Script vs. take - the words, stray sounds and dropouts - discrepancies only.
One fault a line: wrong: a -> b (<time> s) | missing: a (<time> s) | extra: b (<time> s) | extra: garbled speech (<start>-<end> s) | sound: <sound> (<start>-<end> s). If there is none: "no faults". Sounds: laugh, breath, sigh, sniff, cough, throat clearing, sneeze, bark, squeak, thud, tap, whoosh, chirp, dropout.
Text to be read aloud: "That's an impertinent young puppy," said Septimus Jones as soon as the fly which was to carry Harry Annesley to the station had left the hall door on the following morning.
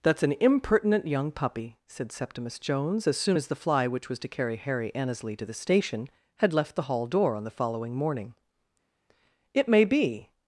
extra: It may be (9.5 s)